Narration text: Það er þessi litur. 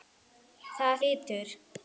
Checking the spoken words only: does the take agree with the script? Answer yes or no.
no